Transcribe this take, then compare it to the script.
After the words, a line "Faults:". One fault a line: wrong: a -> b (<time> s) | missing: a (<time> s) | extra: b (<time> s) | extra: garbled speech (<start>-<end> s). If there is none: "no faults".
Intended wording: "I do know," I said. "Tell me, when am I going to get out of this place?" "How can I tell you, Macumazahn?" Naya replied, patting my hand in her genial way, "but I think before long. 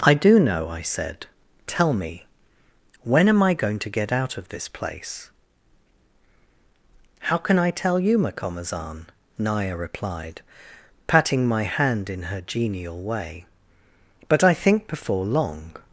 "I do know," I said. "Tell me, when am I going to get out of this place?" "How can I tell you, Macumazahn?" Naya replied, patting my hand in her genial way, "but I think before long.
Faults:
no faults